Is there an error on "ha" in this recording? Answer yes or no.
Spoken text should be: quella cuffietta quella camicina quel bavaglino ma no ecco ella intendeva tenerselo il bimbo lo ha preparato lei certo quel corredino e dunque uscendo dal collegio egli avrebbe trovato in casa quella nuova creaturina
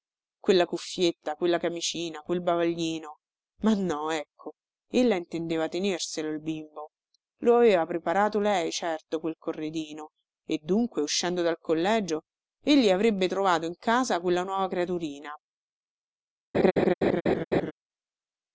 yes